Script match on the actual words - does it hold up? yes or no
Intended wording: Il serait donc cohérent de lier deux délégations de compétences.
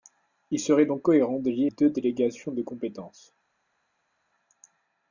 yes